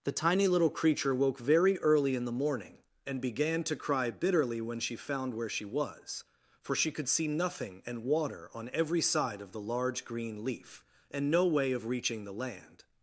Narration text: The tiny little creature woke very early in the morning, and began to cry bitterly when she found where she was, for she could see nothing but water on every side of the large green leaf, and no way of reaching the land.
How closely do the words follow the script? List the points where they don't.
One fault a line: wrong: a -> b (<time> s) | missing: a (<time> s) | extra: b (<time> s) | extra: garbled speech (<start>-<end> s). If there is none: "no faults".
wrong: but -> and (7.8 s)